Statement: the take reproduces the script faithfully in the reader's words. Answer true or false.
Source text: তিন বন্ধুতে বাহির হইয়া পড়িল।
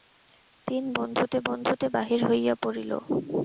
false